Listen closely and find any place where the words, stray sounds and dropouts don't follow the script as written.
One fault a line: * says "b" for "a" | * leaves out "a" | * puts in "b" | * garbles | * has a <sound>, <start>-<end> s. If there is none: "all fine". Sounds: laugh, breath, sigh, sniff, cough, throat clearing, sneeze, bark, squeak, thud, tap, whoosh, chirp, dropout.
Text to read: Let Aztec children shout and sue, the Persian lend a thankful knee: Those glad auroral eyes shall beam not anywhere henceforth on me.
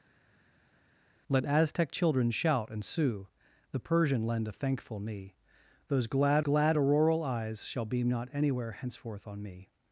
* puts in "glad"